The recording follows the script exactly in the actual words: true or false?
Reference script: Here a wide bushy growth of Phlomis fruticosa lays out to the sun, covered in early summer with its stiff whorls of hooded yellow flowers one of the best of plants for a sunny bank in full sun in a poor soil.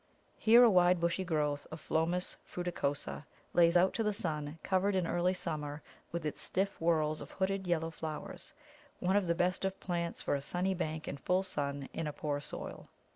true